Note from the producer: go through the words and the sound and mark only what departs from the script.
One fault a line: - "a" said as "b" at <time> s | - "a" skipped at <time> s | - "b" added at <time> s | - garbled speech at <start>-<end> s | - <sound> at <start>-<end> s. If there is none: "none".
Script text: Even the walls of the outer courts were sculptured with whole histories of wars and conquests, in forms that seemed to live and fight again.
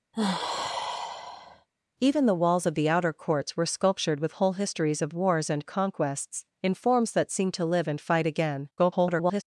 - sigh at 0.1-1.7 s
- garbled speech at 8.8-9.4 s